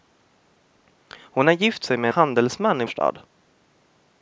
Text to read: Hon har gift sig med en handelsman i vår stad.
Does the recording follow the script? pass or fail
fail